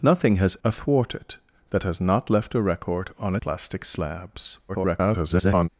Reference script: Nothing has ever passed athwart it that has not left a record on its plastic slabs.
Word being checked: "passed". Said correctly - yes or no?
no